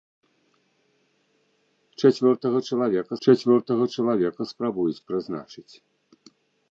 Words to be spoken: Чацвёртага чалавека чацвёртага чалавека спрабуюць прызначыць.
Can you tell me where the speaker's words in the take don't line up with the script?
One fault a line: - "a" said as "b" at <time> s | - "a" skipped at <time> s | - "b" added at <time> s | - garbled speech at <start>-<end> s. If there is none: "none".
none